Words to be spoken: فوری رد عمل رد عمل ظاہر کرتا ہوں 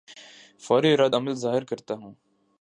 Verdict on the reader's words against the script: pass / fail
fail